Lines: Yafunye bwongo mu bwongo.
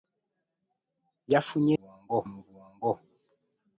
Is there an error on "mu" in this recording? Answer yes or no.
no